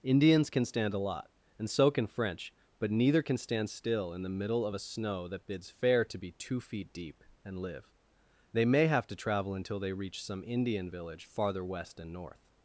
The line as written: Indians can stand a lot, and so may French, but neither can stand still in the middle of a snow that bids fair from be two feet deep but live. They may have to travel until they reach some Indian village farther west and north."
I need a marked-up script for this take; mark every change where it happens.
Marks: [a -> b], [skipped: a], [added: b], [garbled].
Indians can stand a lot, and so [may -> can] French, but neither can stand still in the middle of a snow that bids fair [from -> to] be two feet deep [but -> and] live. They may have to travel until they reach some Indian village farther west and north."